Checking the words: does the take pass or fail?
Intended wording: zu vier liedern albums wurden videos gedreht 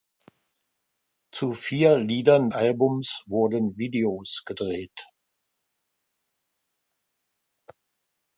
pass